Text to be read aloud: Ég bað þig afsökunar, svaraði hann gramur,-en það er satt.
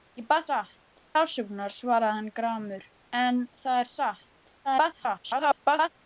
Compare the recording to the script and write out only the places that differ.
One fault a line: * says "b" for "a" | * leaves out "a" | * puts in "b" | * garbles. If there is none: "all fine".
* says "satt" for "þig"
* garbles